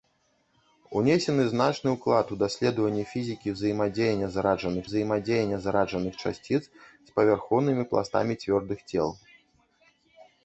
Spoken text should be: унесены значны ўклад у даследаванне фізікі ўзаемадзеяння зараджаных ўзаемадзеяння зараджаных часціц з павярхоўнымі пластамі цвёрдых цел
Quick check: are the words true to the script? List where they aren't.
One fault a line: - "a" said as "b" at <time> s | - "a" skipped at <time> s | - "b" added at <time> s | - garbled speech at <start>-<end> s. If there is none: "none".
none